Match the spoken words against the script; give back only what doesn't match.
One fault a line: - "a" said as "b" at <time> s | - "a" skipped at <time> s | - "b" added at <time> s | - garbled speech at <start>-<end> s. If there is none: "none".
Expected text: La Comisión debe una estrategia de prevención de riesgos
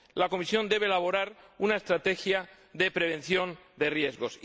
- "elaborar" added at 0.9 s